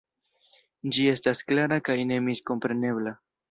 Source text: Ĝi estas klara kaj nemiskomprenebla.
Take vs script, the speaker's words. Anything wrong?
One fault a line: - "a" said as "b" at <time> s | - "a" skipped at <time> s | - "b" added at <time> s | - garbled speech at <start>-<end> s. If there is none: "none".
none